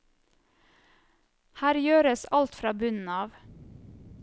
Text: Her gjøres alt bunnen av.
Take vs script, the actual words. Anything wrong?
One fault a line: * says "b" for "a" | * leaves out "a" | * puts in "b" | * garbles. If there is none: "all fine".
* puts in "fra"